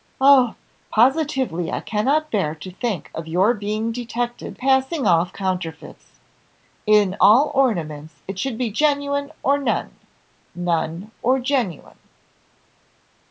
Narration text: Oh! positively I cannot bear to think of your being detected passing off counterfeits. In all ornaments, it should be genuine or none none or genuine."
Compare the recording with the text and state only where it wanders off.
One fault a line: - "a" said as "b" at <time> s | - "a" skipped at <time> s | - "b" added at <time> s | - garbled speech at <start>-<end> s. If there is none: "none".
none